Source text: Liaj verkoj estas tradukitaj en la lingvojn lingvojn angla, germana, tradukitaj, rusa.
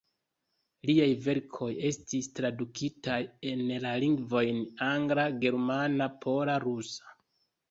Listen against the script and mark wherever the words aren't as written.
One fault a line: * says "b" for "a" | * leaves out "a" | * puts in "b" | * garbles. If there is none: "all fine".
* says "estis" for "estas"
* leaves out "lingvojn"
* says "pola" for "tradukitaj"